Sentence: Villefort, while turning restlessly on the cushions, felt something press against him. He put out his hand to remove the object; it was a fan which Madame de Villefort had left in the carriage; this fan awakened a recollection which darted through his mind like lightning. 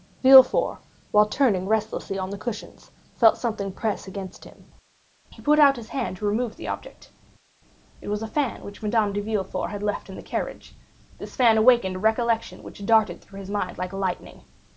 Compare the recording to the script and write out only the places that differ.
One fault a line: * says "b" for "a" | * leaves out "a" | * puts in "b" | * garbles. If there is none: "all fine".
all fine